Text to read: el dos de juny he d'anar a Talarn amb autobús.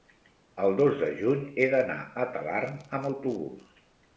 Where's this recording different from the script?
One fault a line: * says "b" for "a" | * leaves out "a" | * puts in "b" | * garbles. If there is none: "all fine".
all fine